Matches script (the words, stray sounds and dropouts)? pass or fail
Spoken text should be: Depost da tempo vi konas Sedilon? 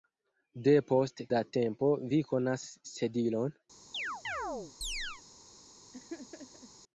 fail